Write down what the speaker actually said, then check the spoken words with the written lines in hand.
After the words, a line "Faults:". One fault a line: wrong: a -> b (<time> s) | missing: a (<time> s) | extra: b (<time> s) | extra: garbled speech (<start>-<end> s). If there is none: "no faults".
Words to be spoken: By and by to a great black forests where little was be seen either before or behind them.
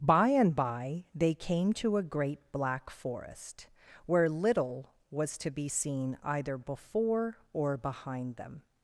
By and by they came to a great black forest where little was to be seen either before or behind them.
Faults:
extra: they came (1.1 s)
wrong: forests -> forest (2.9 s)
extra: to (5.4 s)